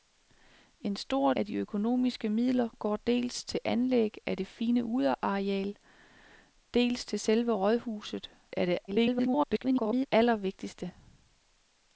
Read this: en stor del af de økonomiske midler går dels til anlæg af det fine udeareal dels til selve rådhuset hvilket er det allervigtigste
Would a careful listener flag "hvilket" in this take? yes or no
yes